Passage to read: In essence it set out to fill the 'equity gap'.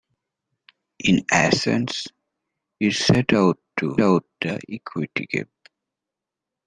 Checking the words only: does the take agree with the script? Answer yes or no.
no